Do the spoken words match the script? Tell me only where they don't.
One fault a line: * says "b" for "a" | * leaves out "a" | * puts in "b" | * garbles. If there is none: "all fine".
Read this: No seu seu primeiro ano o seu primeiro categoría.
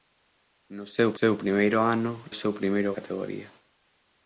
all fine